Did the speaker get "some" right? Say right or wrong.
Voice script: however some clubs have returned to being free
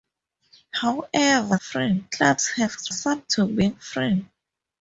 wrong